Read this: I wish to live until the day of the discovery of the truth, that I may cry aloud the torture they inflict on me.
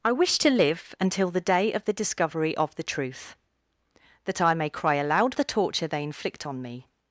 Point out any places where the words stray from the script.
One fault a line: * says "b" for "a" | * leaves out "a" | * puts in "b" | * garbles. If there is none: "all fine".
all fine